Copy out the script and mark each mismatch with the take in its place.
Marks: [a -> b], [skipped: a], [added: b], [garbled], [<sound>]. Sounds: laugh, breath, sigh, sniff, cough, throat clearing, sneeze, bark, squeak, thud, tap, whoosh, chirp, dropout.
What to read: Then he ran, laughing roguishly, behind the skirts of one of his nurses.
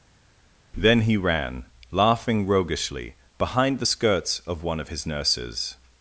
Then he ran, laughing roguishly, behind the skirts of one of his nurses.